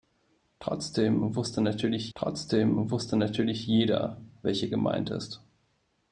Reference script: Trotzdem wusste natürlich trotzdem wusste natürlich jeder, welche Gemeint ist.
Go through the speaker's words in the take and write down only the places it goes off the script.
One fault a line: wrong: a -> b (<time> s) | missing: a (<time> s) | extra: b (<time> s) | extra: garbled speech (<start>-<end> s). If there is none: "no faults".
no faults